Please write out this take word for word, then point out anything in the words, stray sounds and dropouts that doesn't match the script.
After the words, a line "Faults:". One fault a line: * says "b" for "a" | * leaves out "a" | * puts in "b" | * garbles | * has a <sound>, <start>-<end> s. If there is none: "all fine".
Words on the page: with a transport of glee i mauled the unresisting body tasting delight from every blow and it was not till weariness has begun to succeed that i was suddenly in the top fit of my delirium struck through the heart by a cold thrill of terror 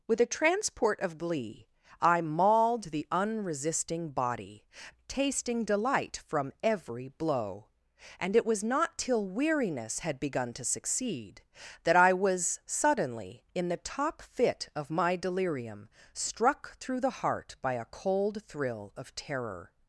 with a transport of glee i mauled the unresisting body tasting delight from every blow and it was not till weariness had begun to succeed that i was suddenly in the top fit of my delirium struck through the heart by a cold thrill of terror
Faults:
* says "had" for "has"